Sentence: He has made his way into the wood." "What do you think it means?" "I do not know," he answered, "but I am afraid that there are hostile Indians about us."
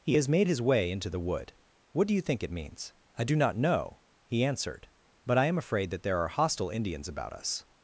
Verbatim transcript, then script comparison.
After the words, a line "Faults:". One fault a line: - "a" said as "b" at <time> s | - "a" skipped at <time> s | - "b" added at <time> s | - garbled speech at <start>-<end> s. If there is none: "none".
He has made his way into the wood." "What do you think it means?" "I do not know," he answered, "but I am afraid that there are hostile Indians about us."
Faults:
none